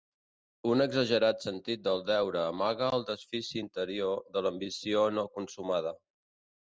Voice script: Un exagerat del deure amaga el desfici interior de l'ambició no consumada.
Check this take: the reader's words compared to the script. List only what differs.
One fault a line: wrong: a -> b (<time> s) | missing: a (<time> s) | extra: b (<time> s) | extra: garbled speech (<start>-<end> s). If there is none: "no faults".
extra: sentit (1.5 s)